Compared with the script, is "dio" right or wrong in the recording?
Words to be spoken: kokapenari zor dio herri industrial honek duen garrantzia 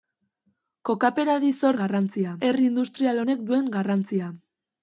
wrong